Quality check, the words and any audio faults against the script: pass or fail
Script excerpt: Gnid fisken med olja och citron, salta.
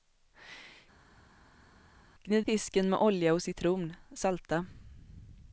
pass